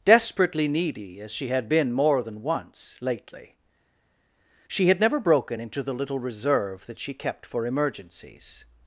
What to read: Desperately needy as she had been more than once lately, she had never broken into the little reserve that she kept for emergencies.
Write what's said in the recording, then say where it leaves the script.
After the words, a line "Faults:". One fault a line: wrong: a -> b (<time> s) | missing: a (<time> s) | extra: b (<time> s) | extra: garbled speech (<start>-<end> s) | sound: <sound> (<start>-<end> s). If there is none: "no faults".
Desperately needy as she had been more than once lately, she had never broken into the little reserve that she kept for emergencies.
Faults:
no faults